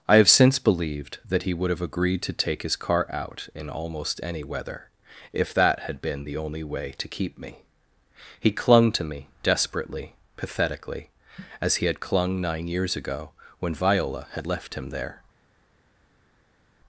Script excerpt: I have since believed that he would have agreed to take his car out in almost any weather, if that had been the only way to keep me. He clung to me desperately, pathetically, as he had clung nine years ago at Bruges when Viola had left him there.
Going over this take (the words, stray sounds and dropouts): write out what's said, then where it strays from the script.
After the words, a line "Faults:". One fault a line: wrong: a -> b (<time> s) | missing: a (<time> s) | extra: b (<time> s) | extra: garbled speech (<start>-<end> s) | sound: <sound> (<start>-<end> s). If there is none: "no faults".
I have since believed that he would have agreed to take his car out in almost any weather, if that had been the only way to keep me. He clung to me desperately, pathetically, as he had clung nine years ago when Viola had left him there.
Faults:
missing: at Bruges (13.3 s)